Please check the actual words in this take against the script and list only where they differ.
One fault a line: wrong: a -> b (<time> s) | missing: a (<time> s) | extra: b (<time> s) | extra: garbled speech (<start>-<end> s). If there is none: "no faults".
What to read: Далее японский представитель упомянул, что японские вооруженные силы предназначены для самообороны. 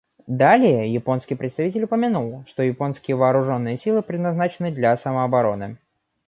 no faults